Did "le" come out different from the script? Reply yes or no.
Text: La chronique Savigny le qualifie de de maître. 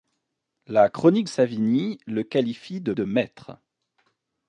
no